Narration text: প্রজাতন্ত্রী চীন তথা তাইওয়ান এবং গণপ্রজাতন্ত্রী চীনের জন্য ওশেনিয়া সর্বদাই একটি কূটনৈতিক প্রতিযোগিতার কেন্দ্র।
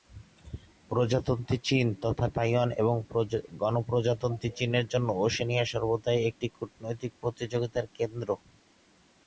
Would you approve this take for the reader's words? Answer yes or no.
yes